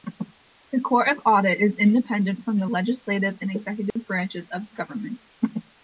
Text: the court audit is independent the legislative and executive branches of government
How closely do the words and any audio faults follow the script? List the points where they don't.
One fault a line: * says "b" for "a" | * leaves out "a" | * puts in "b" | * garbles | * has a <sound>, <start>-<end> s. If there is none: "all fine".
* puts in "of"
* puts in "from"
* has a dropout, 3.9-4.0 s